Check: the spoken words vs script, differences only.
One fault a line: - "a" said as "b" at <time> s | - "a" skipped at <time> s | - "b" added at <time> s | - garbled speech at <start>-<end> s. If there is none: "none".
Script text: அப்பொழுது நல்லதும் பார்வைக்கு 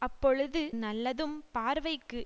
none